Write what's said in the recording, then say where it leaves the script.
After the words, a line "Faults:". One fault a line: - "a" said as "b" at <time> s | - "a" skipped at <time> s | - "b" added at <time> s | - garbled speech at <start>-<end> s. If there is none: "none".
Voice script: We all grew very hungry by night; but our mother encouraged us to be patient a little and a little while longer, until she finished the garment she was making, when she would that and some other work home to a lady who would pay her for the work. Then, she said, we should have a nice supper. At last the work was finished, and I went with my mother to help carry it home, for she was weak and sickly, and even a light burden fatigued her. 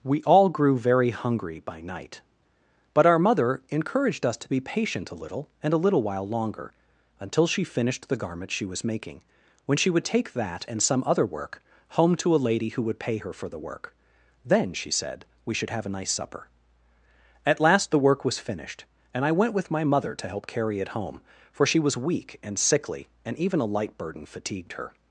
We all grew very hungry by night; but our mother encouraged us to be patient a little and a little while longer, until she finished the garment she was making, when she would take that and some other work home to a lady who would pay her for the work. Then, she said, we should have a nice supper. At last the work was finished, and I went with my mother to help carry it home, for she was weak and sickly, and even a light burden fatigued her.
Faults:
- "take" added at 10.1 s